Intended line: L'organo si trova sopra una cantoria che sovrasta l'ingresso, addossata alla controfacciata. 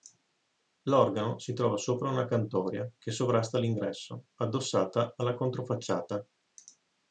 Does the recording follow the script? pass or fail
pass